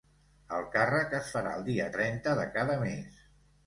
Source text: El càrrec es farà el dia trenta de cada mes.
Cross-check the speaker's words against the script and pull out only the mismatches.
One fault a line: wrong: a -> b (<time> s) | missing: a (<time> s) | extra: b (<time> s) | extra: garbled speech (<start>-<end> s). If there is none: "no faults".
no faults